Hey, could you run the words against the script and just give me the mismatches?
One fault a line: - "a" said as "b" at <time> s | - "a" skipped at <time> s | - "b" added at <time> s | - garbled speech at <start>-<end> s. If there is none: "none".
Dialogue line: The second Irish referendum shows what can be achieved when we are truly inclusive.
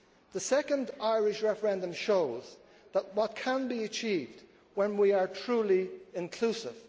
none